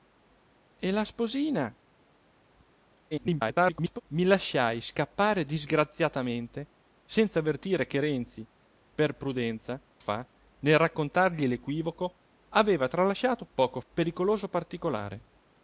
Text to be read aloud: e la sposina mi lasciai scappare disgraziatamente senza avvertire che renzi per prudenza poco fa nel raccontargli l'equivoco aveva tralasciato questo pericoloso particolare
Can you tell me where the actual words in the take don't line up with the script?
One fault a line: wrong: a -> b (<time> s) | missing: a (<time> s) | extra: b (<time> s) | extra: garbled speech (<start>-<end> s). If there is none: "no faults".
extra: garbled speech (3.1-4.0 s)
missing: poco (9.8 s)
wrong: questo -> poco (13.5 s)